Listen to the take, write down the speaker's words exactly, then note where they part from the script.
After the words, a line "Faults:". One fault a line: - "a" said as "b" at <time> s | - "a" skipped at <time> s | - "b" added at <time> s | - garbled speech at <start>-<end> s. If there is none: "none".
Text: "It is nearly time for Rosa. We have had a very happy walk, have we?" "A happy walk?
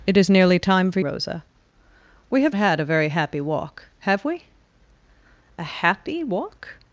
"It is nearly time for Rosa. We have had a very happy walk, have we?" "A happy walk?
Faults:
none